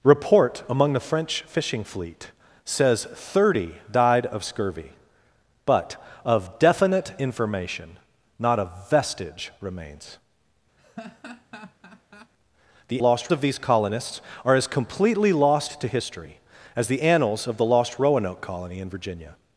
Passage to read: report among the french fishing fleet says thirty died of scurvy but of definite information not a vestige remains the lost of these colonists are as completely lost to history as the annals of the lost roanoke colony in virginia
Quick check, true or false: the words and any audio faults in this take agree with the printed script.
false